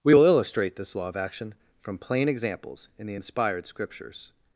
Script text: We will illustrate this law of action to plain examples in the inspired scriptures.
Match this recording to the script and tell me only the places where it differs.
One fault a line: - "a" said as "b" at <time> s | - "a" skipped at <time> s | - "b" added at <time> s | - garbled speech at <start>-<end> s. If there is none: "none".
- "to" said as "from" at 1.8 s